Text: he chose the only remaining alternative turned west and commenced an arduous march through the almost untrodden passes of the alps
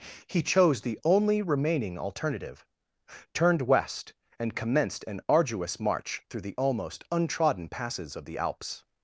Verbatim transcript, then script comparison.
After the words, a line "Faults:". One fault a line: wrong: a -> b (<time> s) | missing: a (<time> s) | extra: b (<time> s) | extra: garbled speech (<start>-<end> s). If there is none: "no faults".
he chose the only remaining alternative turned west and commenced an arduous march through the almost untrodden passes of the alps
Faults:
no faults